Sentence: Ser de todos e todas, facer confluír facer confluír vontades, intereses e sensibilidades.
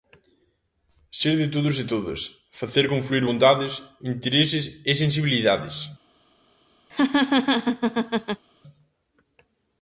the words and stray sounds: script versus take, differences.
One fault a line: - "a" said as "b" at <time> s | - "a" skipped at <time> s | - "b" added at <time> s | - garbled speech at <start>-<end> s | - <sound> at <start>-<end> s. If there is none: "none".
- "facer confluír" skipped at 3.2 s
- laugh at 6.9-8.4 s